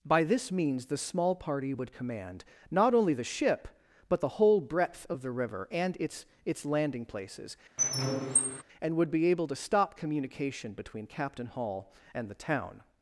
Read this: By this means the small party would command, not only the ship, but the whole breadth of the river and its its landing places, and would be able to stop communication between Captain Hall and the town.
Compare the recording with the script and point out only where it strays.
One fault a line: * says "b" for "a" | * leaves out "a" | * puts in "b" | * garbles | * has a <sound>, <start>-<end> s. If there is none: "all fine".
* has a squeak, 7.8-8.6 s